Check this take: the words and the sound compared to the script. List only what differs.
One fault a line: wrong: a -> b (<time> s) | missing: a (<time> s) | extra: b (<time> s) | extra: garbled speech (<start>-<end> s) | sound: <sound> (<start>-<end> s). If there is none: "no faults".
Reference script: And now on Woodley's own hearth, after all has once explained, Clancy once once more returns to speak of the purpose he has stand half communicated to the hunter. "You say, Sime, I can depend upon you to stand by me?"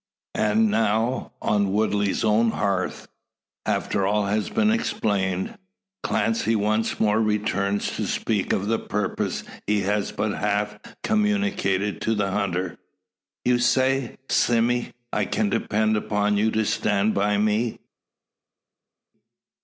wrong: once -> been (4.5 s)
missing: once (7.0 s)
wrong: stand -> but (10.1 s)